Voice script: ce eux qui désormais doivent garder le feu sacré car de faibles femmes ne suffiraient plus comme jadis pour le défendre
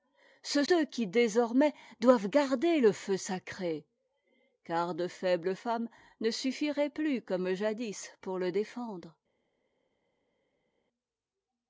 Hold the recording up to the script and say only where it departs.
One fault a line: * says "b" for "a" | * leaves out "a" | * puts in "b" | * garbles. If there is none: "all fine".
all fine